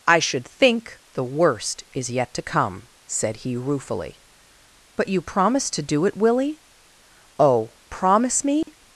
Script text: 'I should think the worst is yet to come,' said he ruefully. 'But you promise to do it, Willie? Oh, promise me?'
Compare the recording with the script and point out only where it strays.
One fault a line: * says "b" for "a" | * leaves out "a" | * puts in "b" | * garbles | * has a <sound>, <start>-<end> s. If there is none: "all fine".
* has a dropout, 8.6-8.7 s